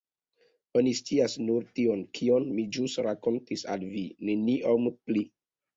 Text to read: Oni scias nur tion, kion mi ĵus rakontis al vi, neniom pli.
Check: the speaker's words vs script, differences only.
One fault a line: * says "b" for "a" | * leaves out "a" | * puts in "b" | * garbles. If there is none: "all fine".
all fine